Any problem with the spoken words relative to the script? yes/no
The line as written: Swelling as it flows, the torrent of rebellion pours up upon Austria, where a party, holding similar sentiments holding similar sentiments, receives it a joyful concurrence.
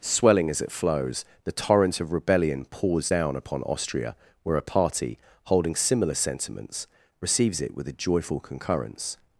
yes